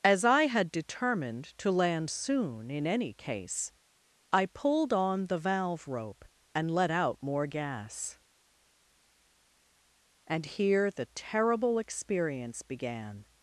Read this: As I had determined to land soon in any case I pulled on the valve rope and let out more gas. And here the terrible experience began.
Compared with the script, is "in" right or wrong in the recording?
right